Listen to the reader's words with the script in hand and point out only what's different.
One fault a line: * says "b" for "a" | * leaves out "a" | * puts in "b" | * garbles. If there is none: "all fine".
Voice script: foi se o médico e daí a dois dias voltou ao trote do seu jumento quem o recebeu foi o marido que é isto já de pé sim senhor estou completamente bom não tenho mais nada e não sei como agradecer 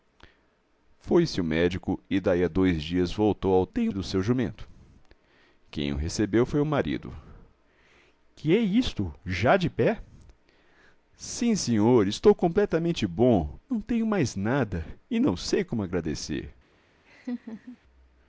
* says "tenho" for "trote"